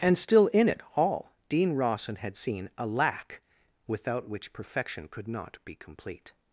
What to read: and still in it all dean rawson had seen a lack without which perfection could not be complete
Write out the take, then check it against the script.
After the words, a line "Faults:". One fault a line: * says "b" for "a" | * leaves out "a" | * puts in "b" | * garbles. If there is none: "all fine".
and still in it all dean rawson had seen a lack without which perfection could not be complete
Faults:
all fine